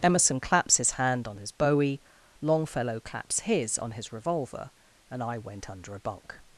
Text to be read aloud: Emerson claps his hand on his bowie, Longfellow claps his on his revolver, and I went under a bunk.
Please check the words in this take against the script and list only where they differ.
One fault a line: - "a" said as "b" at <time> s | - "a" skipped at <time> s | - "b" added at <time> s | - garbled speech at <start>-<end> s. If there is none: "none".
none